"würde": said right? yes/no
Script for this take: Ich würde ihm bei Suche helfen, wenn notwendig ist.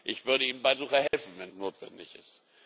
yes